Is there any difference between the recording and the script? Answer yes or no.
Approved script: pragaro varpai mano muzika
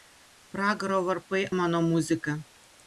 no